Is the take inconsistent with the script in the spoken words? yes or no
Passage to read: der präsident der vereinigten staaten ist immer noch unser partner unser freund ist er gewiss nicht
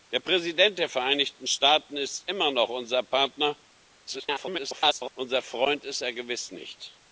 yes